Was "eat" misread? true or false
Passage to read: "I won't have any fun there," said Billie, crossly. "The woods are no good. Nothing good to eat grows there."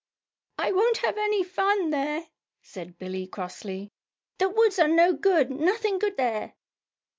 true